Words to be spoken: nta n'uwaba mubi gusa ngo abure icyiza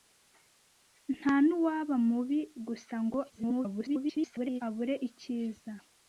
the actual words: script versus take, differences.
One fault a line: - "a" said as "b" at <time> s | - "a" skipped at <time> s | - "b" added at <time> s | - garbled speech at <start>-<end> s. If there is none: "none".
- garbled speech at 3.3-4.6 s